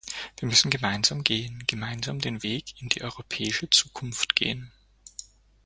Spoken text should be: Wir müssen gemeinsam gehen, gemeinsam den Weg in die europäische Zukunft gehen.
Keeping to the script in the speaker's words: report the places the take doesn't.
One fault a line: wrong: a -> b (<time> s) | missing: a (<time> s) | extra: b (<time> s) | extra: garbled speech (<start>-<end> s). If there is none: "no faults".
no faults